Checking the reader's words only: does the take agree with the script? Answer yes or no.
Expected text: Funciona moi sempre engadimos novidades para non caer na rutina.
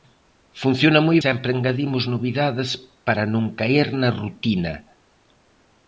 yes